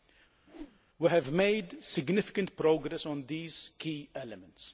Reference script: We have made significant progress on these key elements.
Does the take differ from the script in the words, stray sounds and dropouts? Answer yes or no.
yes